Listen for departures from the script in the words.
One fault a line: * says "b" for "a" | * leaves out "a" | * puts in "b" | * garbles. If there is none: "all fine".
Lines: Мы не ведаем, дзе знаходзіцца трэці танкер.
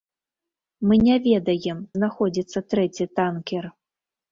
* leaves out "дзе"